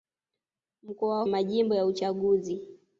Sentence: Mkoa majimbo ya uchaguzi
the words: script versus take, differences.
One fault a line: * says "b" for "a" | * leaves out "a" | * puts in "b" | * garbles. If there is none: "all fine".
all fine